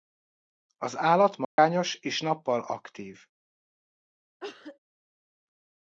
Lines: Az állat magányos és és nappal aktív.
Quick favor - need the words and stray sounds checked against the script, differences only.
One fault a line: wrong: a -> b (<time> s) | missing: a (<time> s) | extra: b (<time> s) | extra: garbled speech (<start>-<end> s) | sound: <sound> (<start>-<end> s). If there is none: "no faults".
sound: dropout (1.4-1.6 s)
missing: és (2.2 s)
sound: cough (4.4-4.8 s)